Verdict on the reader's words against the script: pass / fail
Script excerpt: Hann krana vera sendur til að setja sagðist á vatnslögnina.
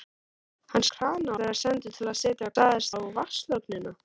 pass